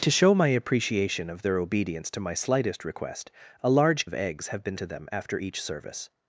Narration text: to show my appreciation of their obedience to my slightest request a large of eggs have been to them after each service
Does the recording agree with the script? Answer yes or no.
yes